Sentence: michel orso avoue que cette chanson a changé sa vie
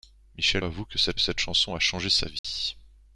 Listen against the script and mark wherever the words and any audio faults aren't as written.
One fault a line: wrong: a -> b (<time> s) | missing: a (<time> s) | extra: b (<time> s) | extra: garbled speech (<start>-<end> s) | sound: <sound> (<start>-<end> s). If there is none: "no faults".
missing: orso (0.7 s)
extra: cette (1.2 s)
sound: dropout (2.4-2.4 s)